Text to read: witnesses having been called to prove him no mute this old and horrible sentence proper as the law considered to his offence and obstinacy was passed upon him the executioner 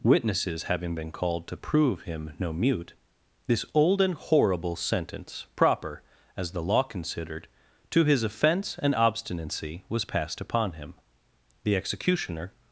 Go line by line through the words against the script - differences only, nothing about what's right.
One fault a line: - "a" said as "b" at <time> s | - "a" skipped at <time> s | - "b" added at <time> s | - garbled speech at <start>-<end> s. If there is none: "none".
none